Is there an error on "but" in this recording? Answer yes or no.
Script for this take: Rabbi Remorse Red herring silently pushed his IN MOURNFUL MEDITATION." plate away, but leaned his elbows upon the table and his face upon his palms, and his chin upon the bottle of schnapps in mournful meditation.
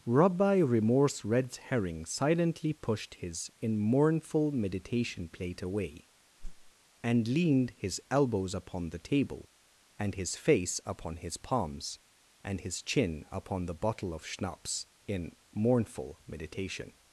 yes